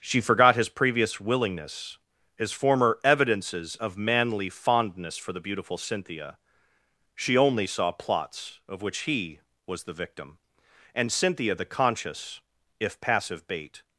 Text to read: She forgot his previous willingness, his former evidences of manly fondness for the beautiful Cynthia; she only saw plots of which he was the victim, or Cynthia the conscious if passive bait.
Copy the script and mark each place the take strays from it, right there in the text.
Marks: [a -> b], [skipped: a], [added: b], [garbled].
She forgot his previous willingness, his former evidences of manly fondness for the beautiful Cynthia; she only saw plots of which he was the victim, [or -> and] Cynthia the conscious if passive bait.